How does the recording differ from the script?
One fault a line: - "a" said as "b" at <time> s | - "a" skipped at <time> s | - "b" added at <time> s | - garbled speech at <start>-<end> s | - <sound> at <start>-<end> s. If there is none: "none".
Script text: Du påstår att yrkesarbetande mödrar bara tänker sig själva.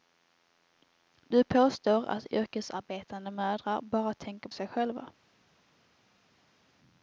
none